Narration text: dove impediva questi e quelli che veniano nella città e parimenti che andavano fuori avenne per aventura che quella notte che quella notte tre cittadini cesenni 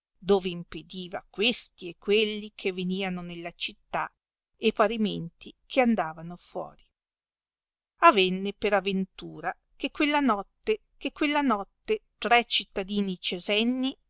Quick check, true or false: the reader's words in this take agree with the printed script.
true